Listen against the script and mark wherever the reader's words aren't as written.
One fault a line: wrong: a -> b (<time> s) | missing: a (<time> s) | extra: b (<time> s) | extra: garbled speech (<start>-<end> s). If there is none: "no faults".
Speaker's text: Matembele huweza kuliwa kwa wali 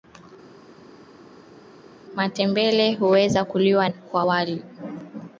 no faults